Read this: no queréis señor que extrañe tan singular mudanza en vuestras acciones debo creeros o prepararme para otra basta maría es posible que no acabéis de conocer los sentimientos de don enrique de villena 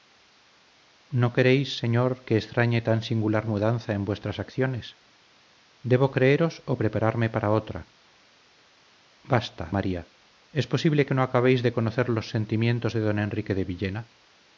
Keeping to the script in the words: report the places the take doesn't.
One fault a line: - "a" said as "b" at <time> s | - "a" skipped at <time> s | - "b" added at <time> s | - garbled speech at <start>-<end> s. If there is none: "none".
none